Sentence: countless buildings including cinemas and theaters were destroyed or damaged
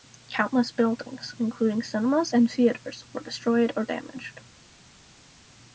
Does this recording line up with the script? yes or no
yes